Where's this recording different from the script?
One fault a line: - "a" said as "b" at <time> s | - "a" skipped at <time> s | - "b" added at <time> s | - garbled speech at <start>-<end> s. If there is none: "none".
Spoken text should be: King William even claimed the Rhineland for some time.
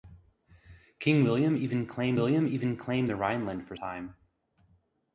- "William even claimed" added at 2.1 s
- "some" skipped at 3.8 s